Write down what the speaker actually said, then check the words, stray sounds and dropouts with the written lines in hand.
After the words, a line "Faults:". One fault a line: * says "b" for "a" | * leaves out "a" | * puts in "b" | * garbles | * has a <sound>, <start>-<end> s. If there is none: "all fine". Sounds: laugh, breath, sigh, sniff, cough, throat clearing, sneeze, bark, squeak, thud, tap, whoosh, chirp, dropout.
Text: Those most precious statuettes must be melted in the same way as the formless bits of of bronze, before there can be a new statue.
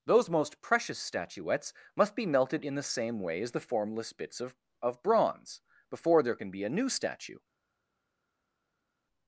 Those most precious statuettes must be melted in the same way as the formless bits of of bronze, before there can be a new statue.
Faults:
all fine